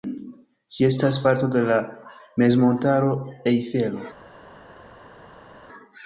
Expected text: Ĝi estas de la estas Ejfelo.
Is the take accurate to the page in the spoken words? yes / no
no